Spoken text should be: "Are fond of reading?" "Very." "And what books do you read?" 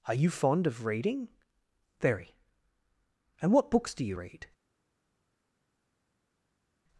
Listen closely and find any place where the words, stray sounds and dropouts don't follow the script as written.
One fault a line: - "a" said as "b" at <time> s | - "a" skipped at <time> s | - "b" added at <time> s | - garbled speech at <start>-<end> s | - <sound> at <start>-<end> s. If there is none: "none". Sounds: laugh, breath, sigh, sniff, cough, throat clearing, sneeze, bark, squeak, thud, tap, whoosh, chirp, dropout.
- "you" added at 0.1 s